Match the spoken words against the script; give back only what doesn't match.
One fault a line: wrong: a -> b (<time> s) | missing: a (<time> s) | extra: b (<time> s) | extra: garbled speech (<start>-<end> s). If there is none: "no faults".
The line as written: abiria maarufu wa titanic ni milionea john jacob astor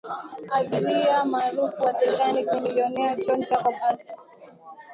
no faults